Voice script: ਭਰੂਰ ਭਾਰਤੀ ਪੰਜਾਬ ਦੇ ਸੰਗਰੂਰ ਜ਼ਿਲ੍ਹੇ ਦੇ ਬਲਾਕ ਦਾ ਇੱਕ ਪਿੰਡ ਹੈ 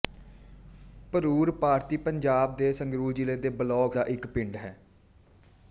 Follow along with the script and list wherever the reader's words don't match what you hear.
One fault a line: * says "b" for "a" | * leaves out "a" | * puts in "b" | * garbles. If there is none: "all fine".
all fine